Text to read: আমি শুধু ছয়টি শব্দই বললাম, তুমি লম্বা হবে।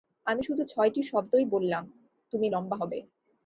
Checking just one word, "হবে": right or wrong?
right